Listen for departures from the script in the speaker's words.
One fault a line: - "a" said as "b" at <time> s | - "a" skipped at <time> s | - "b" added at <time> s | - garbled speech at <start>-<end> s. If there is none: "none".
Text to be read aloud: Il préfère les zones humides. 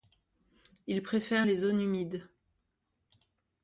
none